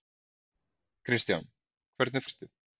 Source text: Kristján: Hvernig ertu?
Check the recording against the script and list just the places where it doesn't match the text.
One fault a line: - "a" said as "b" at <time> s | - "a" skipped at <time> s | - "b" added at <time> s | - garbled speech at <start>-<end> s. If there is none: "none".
none